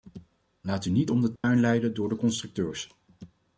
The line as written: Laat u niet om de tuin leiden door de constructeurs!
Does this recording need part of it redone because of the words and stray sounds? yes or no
yes